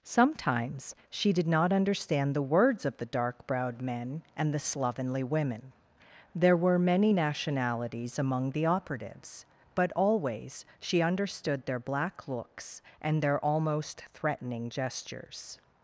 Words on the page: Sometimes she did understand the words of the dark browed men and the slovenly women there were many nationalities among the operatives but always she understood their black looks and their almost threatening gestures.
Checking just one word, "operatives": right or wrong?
right